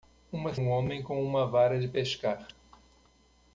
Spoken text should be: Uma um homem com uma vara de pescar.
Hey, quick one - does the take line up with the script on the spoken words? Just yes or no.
yes